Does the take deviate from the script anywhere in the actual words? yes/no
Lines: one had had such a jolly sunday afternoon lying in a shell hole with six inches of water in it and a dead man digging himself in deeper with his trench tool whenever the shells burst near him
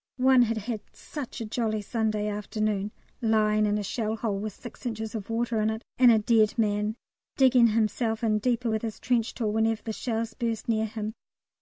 no